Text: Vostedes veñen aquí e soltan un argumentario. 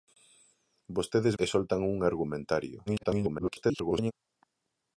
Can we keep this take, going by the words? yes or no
no